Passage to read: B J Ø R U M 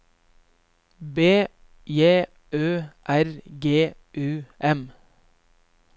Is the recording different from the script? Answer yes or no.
yes